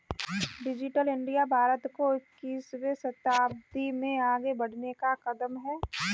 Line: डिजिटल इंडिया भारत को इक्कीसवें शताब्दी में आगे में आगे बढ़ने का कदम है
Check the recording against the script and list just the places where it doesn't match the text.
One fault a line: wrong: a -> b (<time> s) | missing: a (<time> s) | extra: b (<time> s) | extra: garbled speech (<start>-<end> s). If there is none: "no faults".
missing: में आगे (4.5 s)